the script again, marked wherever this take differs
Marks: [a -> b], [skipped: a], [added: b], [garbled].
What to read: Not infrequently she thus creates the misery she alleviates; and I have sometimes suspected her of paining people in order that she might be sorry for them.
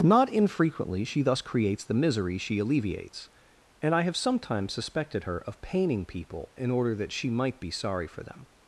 Not infrequently she thus creates the misery she alleviates; and I have sometimes suspected her of paining people in order that she might be sorry for them.